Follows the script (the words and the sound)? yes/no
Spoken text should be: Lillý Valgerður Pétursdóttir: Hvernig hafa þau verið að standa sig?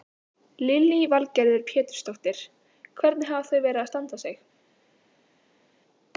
yes